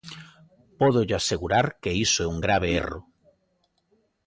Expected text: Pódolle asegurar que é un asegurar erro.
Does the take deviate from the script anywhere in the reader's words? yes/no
yes